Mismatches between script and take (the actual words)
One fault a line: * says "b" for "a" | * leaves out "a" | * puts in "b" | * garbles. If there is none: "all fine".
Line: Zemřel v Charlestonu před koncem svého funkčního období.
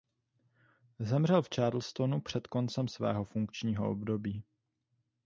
all fine